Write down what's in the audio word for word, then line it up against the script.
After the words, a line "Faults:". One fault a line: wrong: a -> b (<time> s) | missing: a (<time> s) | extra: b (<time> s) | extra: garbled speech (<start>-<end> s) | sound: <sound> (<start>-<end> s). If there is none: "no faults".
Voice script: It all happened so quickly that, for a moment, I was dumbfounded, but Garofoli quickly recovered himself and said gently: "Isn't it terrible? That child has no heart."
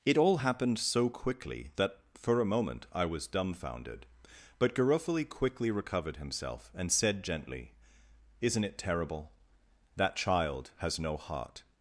It all happened so quickly that, for a moment, I was dumbfounded, but Garofoli quickly recovered himself and said gently: "Isn't it terrible? That child has no heart."
Faults:
no faults